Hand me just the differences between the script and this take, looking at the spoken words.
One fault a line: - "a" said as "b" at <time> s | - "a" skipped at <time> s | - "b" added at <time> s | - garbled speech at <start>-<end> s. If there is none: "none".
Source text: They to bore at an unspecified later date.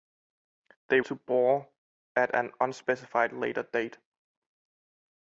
none